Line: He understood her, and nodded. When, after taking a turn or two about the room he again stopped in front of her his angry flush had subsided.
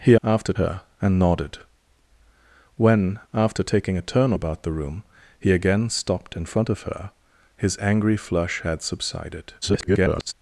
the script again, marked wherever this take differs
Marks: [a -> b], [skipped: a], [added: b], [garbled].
He [understood -> after] her, and nodded. When, after taking a turn [skipped: or two] about the room he again stopped in front of her his angry flush had subsided. [garbled]